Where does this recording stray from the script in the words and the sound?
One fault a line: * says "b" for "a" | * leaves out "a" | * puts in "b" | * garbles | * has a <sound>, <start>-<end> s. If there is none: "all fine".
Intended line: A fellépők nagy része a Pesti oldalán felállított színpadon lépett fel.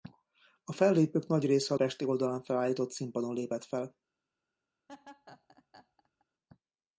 * has a laugh, 4.9-6.3 s